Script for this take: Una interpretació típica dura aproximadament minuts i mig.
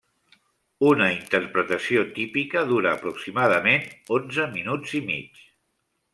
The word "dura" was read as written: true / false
true